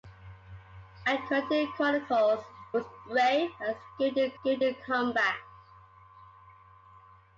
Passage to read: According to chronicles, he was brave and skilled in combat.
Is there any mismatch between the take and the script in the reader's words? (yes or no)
yes